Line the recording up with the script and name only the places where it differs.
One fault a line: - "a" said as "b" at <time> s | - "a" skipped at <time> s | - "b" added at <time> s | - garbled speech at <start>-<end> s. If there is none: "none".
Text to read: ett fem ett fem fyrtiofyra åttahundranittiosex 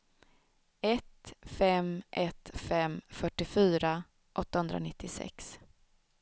none